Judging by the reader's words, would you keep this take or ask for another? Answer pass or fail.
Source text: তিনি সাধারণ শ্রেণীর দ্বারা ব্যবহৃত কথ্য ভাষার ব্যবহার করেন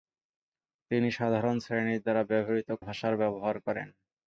fail